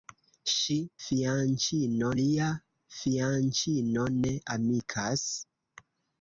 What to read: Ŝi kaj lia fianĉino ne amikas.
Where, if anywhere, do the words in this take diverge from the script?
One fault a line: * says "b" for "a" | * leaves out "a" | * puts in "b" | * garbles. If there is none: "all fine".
* says "fianĉino" for "kaj"